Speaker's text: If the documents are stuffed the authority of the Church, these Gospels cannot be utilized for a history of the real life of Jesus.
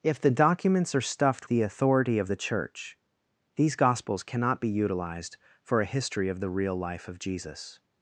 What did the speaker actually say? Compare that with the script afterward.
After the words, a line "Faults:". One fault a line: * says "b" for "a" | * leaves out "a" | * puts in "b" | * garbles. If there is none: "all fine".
If the documents are stuffed the authority of the Church, these Gospels cannot be utilized for a history of the real life of Jesus.
Faults:
all fine